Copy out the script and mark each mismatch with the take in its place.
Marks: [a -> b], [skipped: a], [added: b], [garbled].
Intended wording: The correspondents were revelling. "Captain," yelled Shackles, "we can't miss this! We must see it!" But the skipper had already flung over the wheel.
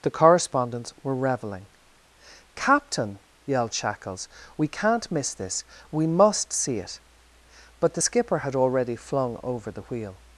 The correspondents were revelling. "Captain," yelled Shackles, "we can't miss this! We must see it!" But the skipper had already flung over the wheel.